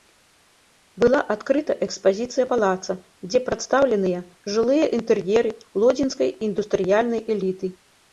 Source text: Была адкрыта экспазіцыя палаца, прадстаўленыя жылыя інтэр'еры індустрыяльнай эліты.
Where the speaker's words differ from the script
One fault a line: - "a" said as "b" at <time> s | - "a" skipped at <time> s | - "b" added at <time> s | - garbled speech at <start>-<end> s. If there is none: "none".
- "дзе" added at 3.3 s
- "лодзінскай" added at 5.8 s